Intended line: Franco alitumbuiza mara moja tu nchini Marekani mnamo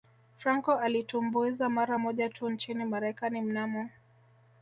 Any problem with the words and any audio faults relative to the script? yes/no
no